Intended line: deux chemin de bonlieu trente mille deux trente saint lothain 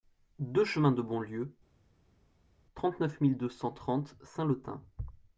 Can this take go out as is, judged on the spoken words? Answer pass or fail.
fail